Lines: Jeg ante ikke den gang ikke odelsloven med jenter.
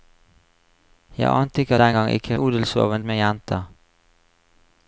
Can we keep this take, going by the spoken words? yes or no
yes